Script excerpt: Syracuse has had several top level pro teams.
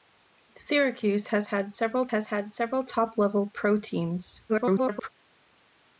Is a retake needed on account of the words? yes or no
yes